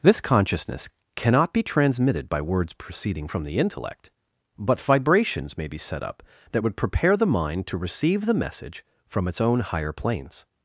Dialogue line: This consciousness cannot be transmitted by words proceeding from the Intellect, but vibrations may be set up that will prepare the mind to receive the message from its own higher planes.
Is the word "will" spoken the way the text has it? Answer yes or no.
no